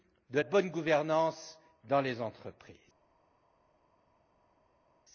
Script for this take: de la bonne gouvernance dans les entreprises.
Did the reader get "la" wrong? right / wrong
wrong